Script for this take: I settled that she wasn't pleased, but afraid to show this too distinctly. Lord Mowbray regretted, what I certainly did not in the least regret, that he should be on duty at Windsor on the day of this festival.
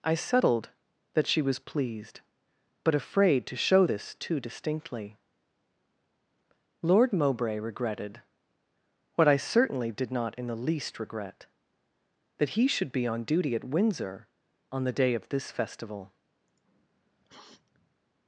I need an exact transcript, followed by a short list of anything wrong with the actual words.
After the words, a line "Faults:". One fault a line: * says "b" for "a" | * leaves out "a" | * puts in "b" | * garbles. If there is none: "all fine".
I settled that she was pleased, but afraid to show this too distinctly. Lord Mowbray regretted, what I certainly did not in the least regret, that he should be on duty at Windsor on the day of this festival.
Faults:
* says "was" for "wasn't"